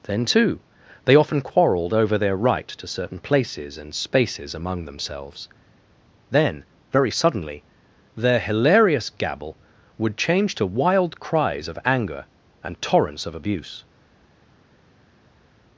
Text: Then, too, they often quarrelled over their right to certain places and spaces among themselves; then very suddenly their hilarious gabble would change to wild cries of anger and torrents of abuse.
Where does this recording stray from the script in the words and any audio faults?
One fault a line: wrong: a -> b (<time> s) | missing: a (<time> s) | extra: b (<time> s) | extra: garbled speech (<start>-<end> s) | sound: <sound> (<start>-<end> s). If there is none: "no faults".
no faults